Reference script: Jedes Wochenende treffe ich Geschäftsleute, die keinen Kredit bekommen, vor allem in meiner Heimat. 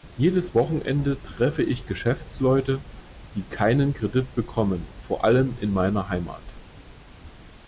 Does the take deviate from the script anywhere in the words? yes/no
no